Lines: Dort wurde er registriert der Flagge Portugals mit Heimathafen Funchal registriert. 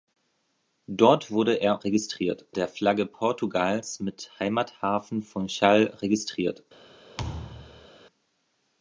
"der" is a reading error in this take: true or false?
false